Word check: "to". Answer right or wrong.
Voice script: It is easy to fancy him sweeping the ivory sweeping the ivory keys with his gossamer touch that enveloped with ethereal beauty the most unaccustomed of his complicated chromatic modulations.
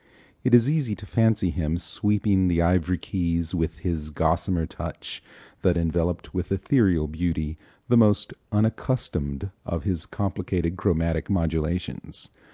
right